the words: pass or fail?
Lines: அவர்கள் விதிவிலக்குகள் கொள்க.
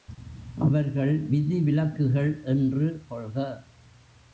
fail